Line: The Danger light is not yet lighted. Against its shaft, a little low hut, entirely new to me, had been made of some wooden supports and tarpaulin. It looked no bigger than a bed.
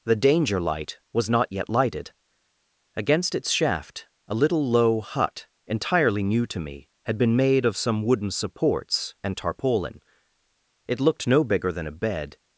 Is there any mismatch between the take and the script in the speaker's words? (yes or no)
yes